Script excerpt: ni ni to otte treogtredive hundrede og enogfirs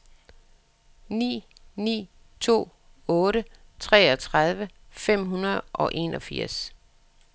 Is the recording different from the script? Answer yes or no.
yes